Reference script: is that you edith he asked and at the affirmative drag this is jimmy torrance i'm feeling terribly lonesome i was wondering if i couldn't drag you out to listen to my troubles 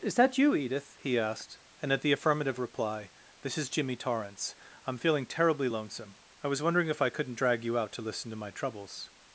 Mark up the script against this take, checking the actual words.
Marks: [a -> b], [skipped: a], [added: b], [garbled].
is that you edith he asked and at the affirmative [drag -> reply] this is jimmy torrance i'm feeling terribly lonesome i was wondering if i couldn't drag you out to listen to my troubles